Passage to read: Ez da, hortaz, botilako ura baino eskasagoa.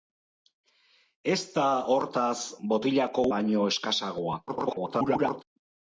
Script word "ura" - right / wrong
wrong